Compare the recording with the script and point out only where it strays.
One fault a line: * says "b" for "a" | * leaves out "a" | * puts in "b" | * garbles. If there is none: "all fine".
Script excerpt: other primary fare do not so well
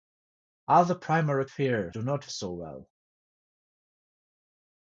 all fine